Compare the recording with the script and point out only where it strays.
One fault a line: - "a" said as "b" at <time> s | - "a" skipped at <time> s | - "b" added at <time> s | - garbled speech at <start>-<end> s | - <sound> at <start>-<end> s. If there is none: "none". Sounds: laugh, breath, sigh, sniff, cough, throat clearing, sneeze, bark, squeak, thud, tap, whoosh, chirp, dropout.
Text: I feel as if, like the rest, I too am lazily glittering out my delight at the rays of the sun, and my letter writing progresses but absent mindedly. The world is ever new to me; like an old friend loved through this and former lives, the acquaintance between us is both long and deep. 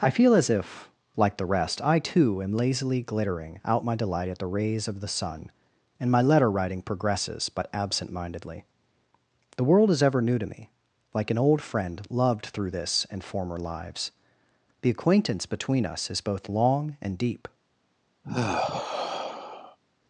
- sigh at 18.2-19.8 s